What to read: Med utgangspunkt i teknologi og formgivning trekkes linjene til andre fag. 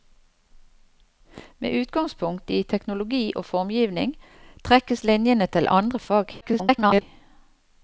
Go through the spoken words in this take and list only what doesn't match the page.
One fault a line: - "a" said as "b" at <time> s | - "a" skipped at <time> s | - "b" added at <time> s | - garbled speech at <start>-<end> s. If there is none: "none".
- garbled speech at 6.4-7.0 s